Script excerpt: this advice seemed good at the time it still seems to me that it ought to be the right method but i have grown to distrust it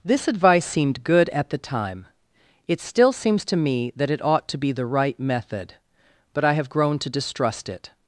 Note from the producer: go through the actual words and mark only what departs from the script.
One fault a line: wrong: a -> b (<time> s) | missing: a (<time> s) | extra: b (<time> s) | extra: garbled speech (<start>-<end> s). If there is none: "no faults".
no faults